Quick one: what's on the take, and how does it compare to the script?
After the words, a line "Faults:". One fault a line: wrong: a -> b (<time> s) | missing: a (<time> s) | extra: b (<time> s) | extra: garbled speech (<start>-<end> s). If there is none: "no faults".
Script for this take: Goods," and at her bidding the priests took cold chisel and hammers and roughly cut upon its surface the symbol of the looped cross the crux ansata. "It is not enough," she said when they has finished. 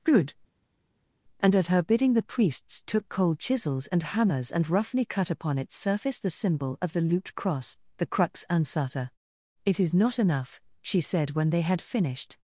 Good," and at her bidding the priests took cold chisels and hammers and roughly cut upon its surface the symbol of the looped cross the crux ansata. "It is not enough," she said when they had finished.
Faults:
wrong: Goods -> Good (0.0 s)
wrong: chisel -> chisels (3.4 s)
wrong: has -> had (11.6 s)